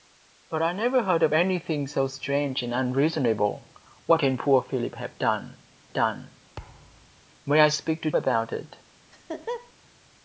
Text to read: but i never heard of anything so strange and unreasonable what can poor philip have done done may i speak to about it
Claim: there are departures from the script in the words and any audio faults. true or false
true